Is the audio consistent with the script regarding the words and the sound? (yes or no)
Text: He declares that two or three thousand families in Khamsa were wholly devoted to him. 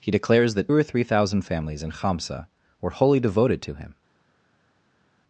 no